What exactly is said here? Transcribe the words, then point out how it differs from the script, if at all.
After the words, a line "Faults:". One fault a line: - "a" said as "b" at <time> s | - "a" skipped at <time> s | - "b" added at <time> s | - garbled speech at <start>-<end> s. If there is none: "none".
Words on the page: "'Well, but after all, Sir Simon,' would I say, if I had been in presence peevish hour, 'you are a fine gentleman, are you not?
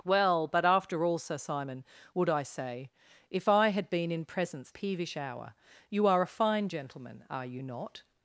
"'Well, but after all, Sir Simon,' would I say, if I had been in presence peevish hour, 'you are a fine gentleman, are you not?
Faults:
none